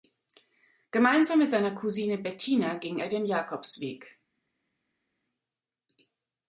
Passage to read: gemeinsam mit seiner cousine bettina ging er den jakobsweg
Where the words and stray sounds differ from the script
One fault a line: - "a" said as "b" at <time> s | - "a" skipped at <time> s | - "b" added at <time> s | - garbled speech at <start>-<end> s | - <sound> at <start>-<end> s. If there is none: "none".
none